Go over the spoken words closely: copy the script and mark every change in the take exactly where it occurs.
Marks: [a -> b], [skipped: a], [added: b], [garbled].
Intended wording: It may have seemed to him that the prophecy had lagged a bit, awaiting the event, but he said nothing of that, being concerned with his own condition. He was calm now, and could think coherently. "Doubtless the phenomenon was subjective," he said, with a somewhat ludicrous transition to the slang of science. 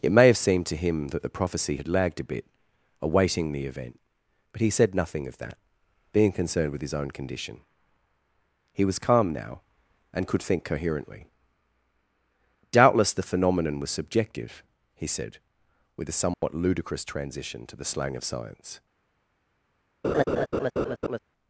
It may have seemed to him that the prophecy had lagged a bit, awaiting the event, but he said nothing of that, being concerned with his own condition. He was calm now, and could think coherently. "Doubtless the phenomenon was subjective," he said, with a somewhat ludicrous transition to the slang of science.